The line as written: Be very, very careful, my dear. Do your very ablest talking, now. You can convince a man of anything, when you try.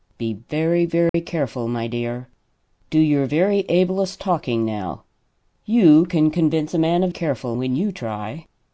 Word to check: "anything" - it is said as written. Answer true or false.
false